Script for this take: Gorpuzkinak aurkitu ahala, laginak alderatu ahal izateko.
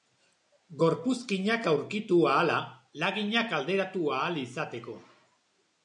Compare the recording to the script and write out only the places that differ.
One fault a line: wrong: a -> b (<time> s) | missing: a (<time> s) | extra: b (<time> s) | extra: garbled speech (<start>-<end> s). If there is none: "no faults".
no faults